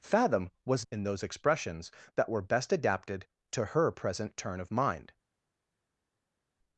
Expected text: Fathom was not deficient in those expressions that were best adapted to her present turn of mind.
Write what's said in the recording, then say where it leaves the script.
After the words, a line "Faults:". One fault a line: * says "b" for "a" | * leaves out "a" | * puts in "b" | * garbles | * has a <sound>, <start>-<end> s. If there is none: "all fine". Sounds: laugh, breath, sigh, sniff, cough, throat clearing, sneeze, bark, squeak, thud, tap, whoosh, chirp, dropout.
Fathom was in those expressions that were best adapted to her present turn of mind.
Faults:
* leaves out "not deficient"